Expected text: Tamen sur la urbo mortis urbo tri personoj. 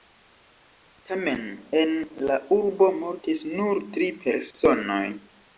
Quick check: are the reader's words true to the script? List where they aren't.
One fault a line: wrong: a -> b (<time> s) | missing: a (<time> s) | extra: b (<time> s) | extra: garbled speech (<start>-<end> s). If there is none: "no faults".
wrong: sur -> en (1.8 s)
wrong: urbo -> nur (3.6 s)